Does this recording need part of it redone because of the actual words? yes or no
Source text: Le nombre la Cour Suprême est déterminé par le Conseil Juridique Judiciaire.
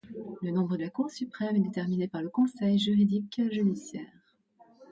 no